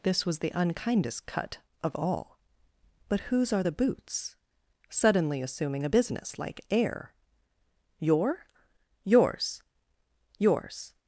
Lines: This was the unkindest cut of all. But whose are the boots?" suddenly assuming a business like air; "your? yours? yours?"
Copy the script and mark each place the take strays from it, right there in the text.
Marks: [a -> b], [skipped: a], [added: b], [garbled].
This was the unkindest cut of all. But whose are the boots?" suddenly assuming a business like air; "your? yours? yours?"